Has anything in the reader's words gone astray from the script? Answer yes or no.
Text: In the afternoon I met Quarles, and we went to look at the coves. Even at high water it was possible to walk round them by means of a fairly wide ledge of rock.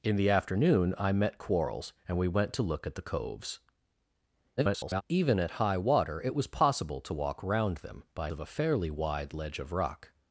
yes